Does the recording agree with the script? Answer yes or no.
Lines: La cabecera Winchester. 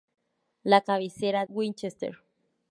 yes